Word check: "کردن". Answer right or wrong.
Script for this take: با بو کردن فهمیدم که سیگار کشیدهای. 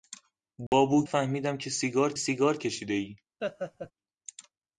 wrong